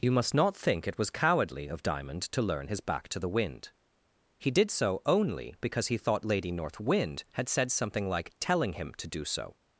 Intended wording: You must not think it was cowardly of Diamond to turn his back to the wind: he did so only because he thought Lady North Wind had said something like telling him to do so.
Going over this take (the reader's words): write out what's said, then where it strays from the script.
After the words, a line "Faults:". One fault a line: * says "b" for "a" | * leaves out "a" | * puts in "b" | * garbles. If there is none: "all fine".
You must not think it was cowardly of Diamond to learn his back to the wind: he did so only because he thought Lady North Wind had said something like telling him to do so.
Faults:
* says "learn" for "turn"